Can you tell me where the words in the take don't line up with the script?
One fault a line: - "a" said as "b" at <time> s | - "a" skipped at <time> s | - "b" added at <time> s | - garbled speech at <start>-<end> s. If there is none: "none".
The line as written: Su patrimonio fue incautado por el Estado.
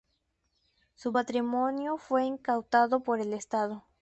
none